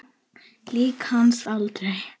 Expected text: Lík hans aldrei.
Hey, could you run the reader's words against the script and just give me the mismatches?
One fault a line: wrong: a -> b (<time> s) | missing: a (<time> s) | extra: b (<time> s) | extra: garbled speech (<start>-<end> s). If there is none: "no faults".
no faults